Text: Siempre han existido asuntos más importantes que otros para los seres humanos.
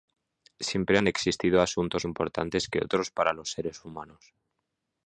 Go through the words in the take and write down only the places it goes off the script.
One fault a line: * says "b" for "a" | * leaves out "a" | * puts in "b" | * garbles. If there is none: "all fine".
* leaves out "más"